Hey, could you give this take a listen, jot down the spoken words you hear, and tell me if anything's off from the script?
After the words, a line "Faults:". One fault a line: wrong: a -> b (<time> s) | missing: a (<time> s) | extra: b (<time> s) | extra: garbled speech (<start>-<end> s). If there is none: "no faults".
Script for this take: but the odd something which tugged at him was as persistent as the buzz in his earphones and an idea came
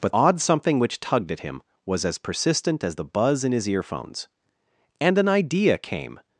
but odd something which tugged at him was as persistent as the buzz in his earphones and an idea came
Faults:
missing: the (0.1 s)